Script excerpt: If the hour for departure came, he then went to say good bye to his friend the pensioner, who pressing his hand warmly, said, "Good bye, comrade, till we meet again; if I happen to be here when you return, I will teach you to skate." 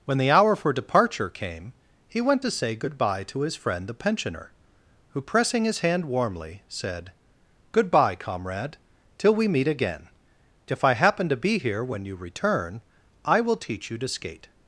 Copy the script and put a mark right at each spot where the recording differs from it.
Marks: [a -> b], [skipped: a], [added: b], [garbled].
[If -> When] the hour for departure came, he [skipped: then] went to say good bye to his friend the pensioner, who pressing his hand warmly, said, "Good bye, comrade, till we meet again; if I happen to be here when you return, I will teach you to skate."